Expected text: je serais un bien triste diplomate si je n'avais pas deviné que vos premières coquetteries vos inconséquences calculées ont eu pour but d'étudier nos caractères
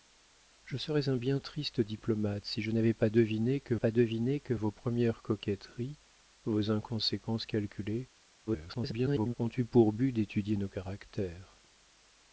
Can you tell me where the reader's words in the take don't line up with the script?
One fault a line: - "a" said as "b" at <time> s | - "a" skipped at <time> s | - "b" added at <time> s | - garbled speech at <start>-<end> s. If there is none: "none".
- "pas deviné que" added at 3.8 s
- garbled speech at 8.5-9.3 s